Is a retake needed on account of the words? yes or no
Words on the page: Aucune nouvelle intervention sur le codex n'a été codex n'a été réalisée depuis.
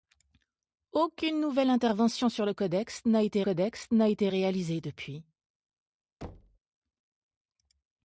no